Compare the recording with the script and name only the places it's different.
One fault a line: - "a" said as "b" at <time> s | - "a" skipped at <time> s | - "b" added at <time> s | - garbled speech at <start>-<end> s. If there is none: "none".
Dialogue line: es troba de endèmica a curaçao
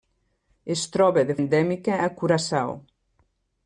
none